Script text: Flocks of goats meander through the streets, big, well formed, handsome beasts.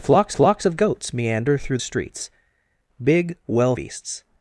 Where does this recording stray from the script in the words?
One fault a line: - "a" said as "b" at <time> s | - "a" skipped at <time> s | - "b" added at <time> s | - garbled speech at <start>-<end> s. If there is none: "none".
- "flocks" added at 0.3 s
- "the" skipped at 1.8 s
- "formed handsome" skipped at 3.7 s